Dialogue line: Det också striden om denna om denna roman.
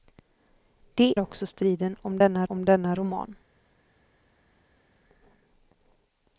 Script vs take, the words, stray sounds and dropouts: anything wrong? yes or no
no